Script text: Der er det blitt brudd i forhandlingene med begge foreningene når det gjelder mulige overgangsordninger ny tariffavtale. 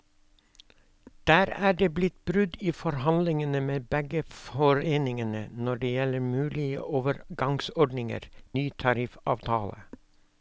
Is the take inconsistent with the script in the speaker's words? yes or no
no